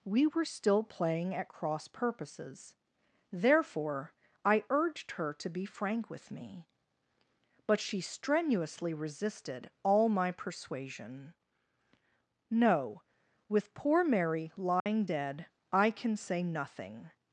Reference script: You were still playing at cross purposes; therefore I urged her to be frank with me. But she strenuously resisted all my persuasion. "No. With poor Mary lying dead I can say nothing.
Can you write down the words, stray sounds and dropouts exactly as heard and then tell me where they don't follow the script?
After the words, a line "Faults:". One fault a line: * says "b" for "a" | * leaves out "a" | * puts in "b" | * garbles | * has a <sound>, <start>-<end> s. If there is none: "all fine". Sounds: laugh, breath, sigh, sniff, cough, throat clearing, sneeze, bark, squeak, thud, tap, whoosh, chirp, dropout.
We were still playing at cross purposes; therefore I urged her to be frank with me. But she strenuously resisted all my persuasion. "No. With poor Mary lying dead I can say nothing.
Faults:
* says "We" for "You"
* has a dropout, 14.8-14.9 s